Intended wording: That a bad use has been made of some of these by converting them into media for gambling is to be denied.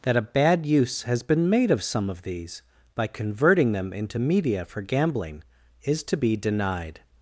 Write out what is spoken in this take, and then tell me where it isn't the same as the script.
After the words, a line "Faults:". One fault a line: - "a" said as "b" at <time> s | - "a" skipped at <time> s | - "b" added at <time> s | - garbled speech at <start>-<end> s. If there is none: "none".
That a bad use has been made of some of these by converting them into media for gambling is to be denied.
Faults:
none